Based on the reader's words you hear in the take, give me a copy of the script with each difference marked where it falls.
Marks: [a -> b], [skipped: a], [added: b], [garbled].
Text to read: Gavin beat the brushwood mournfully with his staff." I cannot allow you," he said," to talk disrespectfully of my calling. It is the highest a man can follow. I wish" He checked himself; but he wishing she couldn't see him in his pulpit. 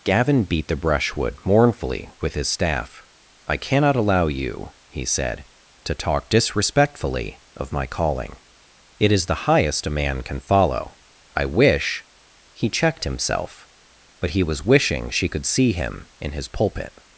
Gavin beat the brushwood mournfully with his staff." I cannot allow you," he said," to talk disrespectfully of my calling. It is the highest a man can follow. I wish" He checked himself; but he [added: was] wishing she [couldn't -> could] see him in his pulpit.